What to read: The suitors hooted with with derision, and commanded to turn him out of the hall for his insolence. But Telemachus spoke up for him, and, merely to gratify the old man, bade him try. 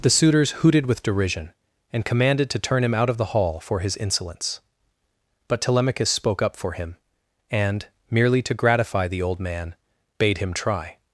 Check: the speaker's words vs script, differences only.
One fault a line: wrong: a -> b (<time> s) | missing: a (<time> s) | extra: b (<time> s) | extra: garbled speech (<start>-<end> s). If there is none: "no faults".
missing: with (1.0 s)